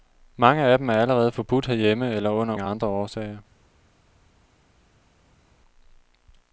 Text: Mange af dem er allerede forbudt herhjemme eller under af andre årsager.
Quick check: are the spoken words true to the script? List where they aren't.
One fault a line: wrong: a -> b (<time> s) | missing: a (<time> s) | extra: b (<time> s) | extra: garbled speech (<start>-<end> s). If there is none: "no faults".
no faults